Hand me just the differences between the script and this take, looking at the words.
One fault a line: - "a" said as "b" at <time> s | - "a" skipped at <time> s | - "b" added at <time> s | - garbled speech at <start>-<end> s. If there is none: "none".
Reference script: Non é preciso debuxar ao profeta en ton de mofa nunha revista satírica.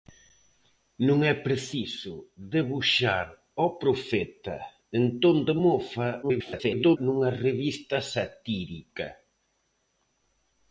- garbled speech at 6.2-7.0 s